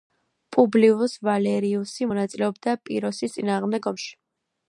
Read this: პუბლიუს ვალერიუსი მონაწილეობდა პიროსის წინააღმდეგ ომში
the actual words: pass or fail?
pass